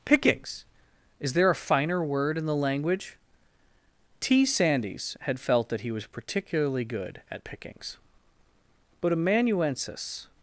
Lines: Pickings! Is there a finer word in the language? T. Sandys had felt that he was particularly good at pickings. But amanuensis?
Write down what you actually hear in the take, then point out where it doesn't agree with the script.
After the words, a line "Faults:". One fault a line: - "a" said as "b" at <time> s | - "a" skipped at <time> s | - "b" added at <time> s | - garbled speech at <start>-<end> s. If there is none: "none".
Pickings! Is there a finer word in the language? T. Sandys had felt that he was particularly good at pickings. But amanuensis?
Faults:
none